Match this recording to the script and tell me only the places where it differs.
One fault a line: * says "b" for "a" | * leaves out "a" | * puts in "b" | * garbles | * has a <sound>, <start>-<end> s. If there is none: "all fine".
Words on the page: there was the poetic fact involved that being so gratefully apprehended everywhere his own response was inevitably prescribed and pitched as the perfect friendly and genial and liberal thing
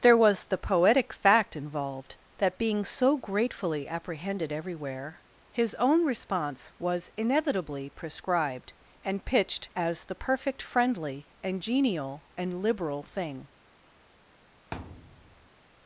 * has a thud, 14.7-15.5 s